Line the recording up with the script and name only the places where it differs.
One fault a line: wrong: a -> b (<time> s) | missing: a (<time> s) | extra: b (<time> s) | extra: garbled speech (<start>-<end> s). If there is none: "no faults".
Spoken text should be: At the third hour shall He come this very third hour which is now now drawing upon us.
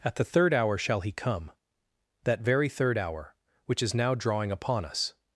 wrong: this -> that (2.2 s)
missing: now (4.2 s)